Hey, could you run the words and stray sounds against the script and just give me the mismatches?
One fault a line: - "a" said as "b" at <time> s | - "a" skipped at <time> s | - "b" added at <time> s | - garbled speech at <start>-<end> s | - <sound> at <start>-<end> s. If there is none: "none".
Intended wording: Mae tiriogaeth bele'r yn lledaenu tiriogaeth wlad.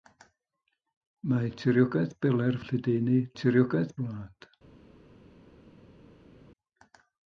none